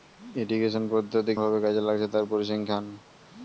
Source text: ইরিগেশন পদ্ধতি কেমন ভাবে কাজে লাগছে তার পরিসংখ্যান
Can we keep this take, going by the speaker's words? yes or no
no